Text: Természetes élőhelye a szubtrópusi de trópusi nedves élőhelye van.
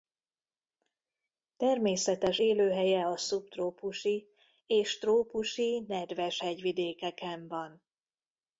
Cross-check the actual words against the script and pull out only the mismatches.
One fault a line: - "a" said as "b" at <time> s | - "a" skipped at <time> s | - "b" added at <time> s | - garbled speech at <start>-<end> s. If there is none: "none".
- "de" said as "és" at 4.7 s
- "élőhelye" said as "hegyvidékeken" at 6.4 s